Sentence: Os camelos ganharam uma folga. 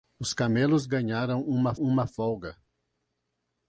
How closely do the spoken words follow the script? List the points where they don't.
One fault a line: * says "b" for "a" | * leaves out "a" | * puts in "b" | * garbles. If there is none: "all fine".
* puts in "uma"